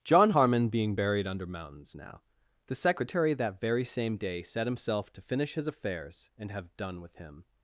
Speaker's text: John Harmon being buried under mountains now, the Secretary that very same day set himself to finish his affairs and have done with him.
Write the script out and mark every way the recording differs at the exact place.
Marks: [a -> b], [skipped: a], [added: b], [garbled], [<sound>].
John Harmon being buried under mountains now, the Secretary that very same day set himself to finish his affairs and have done with him.